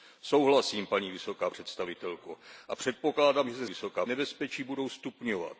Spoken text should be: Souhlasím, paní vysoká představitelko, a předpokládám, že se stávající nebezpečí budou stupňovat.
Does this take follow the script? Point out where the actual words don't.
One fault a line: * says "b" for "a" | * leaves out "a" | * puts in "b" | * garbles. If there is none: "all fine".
* says "vysoká" for "stávající"